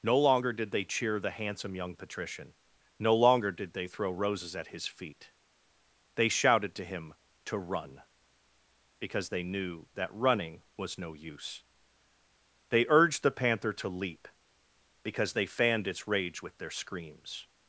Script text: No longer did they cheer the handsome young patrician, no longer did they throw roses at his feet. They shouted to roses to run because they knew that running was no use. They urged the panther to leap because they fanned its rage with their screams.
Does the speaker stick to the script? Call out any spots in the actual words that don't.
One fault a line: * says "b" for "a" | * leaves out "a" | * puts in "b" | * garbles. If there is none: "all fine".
* says "him" for "roses"